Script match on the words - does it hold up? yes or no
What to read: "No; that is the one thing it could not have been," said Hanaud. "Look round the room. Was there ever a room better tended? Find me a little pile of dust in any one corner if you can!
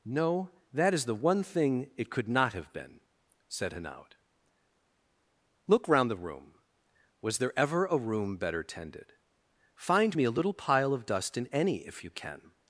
no